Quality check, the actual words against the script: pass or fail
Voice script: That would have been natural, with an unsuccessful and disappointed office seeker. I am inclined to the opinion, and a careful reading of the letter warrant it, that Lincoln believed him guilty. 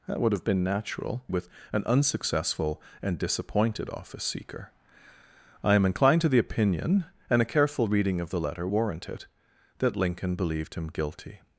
pass